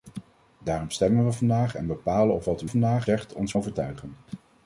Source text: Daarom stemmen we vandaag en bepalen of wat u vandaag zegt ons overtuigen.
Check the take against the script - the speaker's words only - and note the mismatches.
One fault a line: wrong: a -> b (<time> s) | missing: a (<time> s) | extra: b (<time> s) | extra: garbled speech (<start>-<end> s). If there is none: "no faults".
no faults